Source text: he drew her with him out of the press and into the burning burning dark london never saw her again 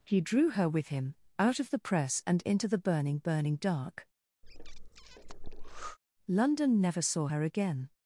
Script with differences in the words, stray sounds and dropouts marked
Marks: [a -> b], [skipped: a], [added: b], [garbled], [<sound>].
he drew her with him out of the press and into the burning burning dark [breath] london never saw her again